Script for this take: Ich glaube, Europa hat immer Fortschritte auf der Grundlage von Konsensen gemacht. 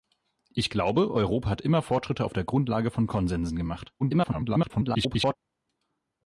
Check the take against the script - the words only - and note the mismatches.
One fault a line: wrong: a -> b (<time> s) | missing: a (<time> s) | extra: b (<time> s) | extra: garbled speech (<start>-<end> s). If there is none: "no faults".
extra: garbled speech (4.0-5.4 s)